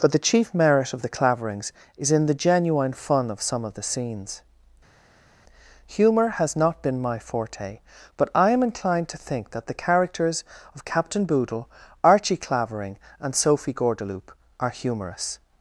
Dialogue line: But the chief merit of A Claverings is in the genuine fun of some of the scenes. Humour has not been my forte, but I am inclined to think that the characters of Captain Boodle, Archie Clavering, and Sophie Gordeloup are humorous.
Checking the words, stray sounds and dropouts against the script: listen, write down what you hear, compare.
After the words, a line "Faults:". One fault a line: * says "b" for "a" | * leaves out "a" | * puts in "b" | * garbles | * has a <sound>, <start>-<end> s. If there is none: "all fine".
But the chief merit of The Claverings is in the genuine fun of some of the scenes. Humour has not been my forte, but I am inclined to think that the characters of Captain Boodle, Archie Clavering, and Sophie Gordeloup are humorous.
Faults:
* says "The" for "A"